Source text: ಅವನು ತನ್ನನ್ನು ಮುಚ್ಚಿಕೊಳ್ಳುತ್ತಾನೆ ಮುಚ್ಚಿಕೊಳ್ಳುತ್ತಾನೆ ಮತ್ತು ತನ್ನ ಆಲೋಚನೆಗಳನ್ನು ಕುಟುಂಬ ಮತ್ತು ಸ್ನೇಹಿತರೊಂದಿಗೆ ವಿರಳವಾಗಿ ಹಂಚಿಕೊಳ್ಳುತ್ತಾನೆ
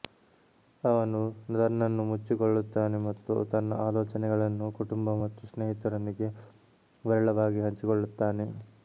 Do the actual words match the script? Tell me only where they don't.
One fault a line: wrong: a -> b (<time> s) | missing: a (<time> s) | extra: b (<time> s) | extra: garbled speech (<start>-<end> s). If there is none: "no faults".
missing: ಮುಚ್ಚಿಕೊಳ್ಳುತ್ತಾನೆ (3.0 s)